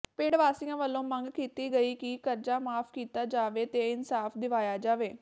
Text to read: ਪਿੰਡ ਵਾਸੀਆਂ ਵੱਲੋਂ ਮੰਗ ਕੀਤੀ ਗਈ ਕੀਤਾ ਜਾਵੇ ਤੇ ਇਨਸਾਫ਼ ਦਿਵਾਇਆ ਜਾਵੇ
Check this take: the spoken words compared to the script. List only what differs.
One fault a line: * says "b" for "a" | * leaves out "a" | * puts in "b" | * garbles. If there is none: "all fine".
* puts in "ਕਿ ਕਰਜ਼ਾ ਮਾਫ਼"